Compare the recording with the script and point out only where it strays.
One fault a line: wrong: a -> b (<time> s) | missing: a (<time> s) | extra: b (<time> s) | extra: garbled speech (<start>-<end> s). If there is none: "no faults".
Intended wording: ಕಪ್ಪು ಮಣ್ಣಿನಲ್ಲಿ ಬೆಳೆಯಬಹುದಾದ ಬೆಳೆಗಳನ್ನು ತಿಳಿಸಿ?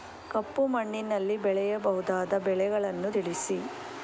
no faults